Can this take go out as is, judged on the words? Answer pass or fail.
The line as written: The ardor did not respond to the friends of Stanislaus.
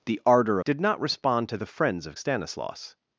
pass